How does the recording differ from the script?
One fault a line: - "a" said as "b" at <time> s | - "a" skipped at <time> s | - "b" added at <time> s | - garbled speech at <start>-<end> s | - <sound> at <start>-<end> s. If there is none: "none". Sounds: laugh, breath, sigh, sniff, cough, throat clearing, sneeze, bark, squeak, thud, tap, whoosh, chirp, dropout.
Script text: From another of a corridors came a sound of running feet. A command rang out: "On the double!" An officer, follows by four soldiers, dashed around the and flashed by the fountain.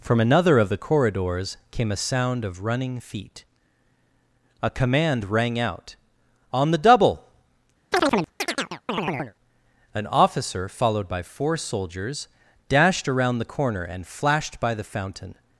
- "a" said as "the" at 0.7 s
- chirp at 7.9-9.3 s
- "follows" said as "followed" at 10.7 s
- "corner" added at 13.5 s